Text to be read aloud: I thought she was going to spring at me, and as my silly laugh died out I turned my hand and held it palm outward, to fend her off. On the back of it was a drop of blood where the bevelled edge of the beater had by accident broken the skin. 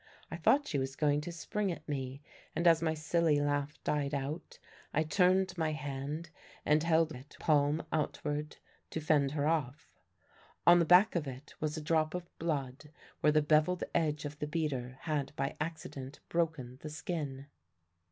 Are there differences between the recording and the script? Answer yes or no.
no